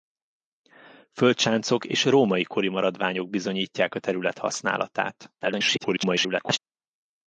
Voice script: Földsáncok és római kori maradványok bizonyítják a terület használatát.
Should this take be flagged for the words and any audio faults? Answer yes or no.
yes